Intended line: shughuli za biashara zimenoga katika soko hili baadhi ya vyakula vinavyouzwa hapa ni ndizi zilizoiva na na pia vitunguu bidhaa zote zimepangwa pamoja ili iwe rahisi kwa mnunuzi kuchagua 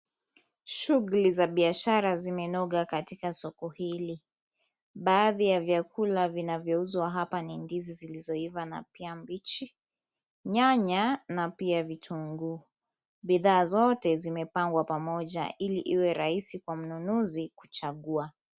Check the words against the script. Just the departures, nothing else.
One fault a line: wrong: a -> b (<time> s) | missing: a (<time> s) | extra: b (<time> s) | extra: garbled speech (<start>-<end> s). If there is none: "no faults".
extra: pia mbichi nyanya (8.9 s)